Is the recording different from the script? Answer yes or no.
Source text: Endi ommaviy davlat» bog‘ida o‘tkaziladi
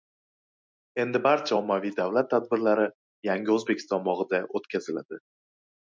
yes